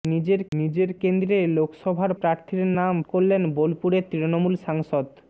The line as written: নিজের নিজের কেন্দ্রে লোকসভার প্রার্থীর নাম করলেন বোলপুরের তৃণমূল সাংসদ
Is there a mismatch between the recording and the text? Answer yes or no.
no